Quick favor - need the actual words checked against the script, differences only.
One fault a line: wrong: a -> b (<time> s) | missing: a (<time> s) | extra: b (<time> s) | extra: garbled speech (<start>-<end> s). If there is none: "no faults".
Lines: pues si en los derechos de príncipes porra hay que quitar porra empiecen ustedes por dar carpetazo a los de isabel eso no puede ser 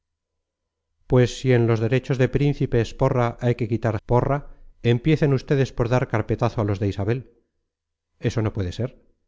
no faults